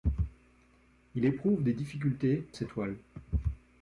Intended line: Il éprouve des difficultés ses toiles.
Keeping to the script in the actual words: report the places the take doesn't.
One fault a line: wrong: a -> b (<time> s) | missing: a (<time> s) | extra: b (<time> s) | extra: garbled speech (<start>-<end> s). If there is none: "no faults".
no faults